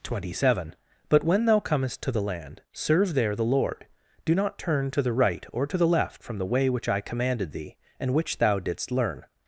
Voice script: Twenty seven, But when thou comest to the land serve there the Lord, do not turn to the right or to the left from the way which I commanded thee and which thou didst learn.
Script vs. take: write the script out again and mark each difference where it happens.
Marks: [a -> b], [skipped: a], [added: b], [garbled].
Twenty seven, But when thou comest to the land serve there the Lord, do not turn to the right or to the left from the way which I commanded thee and which thou didst learn.